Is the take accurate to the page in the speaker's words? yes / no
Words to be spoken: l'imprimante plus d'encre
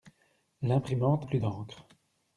yes